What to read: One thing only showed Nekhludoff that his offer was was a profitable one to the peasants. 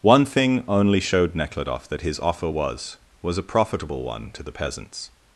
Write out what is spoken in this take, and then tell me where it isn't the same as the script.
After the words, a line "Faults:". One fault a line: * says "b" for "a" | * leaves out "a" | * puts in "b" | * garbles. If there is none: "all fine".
One thing only showed Nekhludoff that his offer was was a profitable one to the peasants.
Faults:
all fine